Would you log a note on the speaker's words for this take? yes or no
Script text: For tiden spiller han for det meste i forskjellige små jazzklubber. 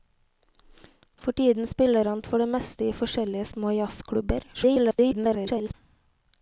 yes